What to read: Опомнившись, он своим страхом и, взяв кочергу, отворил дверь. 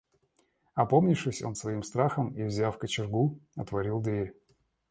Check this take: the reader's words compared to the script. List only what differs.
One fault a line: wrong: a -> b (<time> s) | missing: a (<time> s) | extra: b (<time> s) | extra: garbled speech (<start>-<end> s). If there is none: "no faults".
no faults